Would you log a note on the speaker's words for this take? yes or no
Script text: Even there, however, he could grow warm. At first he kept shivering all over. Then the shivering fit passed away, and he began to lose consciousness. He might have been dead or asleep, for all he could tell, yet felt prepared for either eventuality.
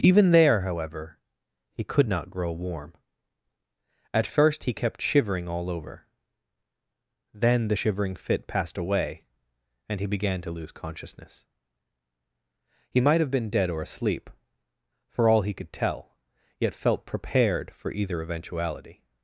yes